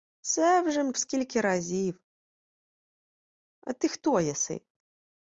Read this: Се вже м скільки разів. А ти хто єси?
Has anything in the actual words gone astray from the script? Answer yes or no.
no